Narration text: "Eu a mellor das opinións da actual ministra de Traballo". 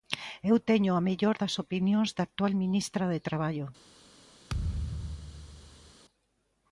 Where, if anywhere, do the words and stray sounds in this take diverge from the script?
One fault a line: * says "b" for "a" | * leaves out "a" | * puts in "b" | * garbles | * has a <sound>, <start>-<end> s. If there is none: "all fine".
* puts in "teño"
* has a thud, 4.5-5.9 s